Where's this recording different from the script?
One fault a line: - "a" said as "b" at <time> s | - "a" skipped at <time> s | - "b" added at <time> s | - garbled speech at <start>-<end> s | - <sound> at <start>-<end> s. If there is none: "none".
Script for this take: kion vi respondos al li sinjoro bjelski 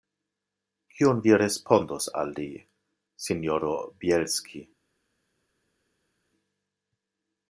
none